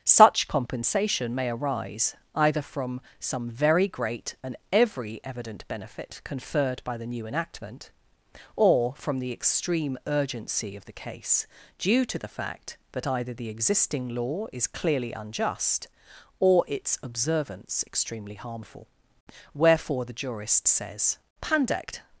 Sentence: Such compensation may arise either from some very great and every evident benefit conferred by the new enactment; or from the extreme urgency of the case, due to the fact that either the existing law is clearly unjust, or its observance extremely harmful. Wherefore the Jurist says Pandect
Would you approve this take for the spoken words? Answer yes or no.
yes